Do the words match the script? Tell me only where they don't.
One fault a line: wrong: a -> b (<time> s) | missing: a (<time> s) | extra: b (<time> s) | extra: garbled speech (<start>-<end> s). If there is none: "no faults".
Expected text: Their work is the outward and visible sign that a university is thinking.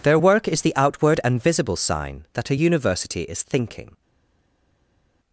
no faults